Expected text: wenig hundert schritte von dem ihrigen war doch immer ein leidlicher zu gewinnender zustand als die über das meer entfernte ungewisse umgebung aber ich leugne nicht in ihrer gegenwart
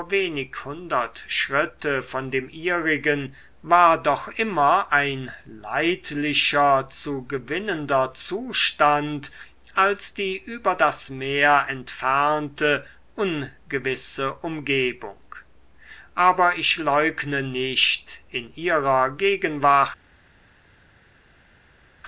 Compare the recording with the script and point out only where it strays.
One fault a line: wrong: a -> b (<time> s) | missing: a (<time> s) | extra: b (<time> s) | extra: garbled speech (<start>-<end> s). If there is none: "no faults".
no faults